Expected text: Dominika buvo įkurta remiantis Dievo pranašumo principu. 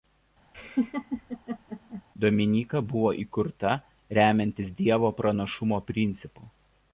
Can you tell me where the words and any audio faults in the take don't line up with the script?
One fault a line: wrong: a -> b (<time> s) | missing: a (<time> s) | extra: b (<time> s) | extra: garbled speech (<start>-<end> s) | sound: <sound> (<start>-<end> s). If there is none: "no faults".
sound: laugh (0.5-2.0 s)